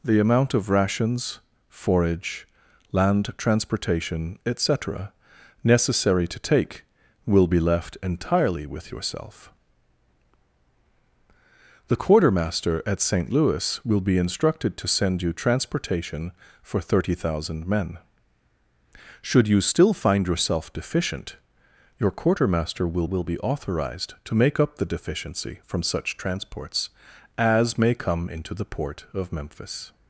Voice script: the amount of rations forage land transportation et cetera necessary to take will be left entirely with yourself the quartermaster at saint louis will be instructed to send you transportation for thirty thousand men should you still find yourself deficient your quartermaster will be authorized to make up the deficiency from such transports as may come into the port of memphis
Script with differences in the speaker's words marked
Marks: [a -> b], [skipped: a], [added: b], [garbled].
the amount of rations forage land transportation et cetera necessary to take will be left entirely with yourself the quartermaster at saint louis will be instructed to send you transportation for thirty thousand men should you still find yourself deficient your quartermaster will [added: will] be authorized to make up the deficiency from such transports as may come into the port of memphis